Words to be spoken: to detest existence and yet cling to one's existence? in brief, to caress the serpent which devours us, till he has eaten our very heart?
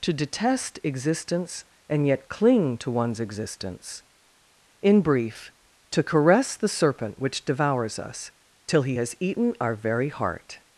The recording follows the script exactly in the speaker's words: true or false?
true